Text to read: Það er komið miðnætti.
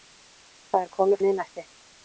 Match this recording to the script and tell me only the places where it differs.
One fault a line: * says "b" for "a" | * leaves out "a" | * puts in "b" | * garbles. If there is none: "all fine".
all fine